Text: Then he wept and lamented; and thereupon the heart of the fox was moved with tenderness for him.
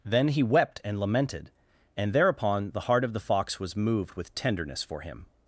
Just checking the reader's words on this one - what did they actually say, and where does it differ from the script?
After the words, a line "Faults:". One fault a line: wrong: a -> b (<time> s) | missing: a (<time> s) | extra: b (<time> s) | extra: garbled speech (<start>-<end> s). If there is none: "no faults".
Then he wept and lamented; and thereupon the heart of the fox was moved with tenderness for him.
Faults:
no faults